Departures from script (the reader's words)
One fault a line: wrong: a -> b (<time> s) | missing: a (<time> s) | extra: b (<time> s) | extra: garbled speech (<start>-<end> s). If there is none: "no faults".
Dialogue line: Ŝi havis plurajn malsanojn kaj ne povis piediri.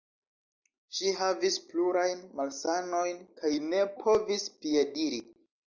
no faults